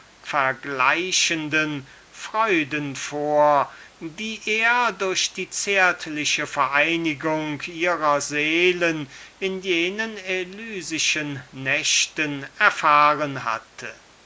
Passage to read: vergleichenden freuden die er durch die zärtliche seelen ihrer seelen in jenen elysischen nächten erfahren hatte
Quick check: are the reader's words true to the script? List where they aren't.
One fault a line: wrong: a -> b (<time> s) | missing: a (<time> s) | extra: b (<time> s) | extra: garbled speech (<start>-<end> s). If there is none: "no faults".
extra: vor (3.0 s)
wrong: seelen -> vereinigung (6.5 s)